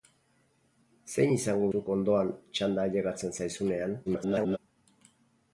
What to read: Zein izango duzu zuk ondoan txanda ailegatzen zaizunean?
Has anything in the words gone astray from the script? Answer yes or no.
yes